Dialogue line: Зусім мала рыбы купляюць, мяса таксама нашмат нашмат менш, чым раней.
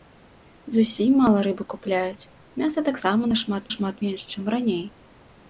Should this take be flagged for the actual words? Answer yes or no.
no